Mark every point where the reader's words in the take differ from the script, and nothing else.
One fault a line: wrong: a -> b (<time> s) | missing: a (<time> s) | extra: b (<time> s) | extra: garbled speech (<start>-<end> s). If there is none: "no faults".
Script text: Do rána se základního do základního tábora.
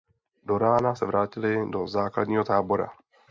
wrong: základního -> vrátili (1.0 s)